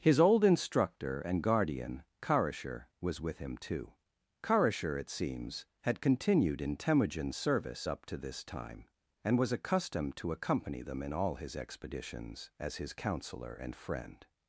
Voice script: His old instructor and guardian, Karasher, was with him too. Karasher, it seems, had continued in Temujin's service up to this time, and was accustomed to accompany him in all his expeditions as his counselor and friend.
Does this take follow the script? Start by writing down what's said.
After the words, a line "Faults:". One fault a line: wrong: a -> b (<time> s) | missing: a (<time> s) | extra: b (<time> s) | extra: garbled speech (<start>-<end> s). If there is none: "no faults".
His old instructor and guardian, Karasher, was with him too. Karasher, it seems, had continued in Temujin's service up to this time, and was accustomed to accompany them in all his expeditions as his counselor and friend.
Faults:
wrong: him -> them (10.8 s)